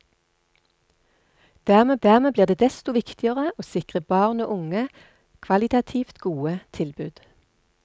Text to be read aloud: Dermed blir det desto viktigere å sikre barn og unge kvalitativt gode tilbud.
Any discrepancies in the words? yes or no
yes